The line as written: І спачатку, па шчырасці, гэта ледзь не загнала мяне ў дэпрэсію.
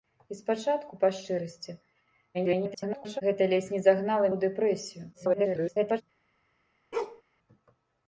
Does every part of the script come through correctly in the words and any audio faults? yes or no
no